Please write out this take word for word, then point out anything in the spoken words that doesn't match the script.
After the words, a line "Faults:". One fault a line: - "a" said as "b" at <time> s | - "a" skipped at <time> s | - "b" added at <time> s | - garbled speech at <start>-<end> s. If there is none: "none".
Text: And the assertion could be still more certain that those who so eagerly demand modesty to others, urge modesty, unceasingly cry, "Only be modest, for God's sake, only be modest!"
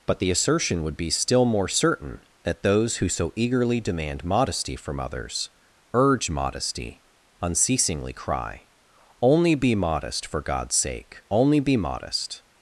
But the assertion would be still more certain that those who so eagerly demand modesty from others, urge modesty, unceasingly cry, "Only be modest, for God's sake, only be modest!"
Faults:
- "And" said as "But" at 0.1 s
- "could" said as "would" at 0.8 s
- "to" said as "from" at 4.8 s